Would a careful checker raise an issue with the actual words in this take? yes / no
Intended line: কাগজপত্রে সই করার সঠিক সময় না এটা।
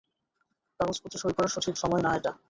no